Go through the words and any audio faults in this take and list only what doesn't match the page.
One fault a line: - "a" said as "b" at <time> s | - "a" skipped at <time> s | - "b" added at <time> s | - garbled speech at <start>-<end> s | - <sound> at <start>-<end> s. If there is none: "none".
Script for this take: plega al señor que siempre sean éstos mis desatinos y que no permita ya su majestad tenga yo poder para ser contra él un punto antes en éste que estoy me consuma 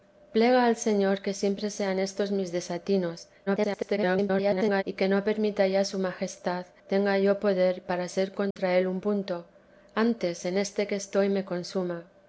- garbled speech at 3.5-4.8 s
- dropout at 8.5-8.6 s